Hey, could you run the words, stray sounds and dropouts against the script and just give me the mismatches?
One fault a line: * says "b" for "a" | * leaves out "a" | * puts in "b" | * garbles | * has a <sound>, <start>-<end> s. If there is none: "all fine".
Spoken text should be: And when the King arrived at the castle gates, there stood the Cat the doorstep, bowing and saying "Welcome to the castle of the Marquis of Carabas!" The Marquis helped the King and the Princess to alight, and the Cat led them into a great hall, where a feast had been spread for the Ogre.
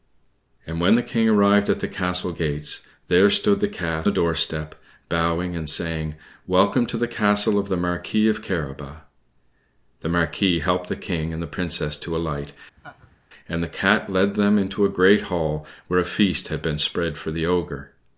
* has a laugh, 12.8-13.2 s